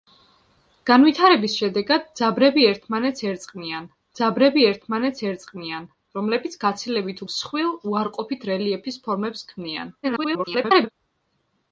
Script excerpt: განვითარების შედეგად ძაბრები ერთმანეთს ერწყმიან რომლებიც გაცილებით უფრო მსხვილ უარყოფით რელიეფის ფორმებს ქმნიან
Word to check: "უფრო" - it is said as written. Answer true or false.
false